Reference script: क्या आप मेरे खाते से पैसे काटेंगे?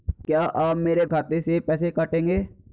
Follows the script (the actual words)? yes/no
yes